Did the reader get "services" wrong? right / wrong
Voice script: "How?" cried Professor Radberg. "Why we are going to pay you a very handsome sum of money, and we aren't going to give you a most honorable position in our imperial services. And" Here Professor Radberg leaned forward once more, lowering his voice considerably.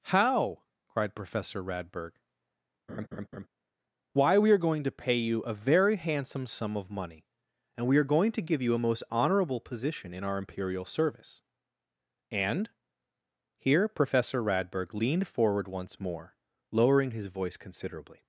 wrong